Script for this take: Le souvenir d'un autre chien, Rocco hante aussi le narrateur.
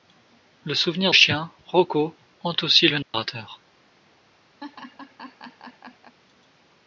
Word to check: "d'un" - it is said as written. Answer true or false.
false